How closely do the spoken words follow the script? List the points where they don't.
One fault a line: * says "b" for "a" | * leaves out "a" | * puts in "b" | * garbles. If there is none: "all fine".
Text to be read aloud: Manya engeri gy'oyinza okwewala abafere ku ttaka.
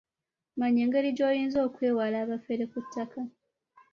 all fine